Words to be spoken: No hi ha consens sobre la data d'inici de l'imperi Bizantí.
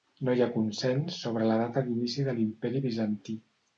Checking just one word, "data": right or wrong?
right